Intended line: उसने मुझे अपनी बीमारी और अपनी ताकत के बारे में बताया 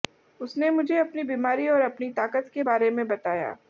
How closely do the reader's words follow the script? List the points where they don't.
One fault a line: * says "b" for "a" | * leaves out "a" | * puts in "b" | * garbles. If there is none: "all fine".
all fine